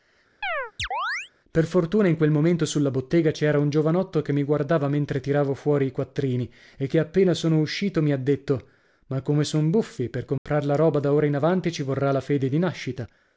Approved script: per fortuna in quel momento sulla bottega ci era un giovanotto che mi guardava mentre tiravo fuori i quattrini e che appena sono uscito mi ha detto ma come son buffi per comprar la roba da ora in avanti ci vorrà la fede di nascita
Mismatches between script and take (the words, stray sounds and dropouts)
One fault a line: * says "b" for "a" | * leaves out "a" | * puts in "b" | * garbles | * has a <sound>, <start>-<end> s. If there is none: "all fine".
* has a chirp, 0.4-1.3 s
* has a dropout, 10.4-10.5 s